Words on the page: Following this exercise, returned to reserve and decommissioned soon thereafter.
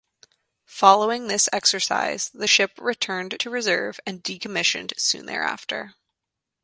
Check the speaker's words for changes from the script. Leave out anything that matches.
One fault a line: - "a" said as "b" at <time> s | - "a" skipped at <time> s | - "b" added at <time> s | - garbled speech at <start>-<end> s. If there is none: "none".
- "the ship" added at 2.3 s